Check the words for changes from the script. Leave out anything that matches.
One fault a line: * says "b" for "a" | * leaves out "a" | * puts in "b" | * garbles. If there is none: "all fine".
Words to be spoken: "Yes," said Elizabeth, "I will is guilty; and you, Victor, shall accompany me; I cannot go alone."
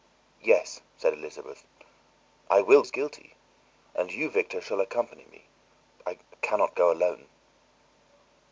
all fine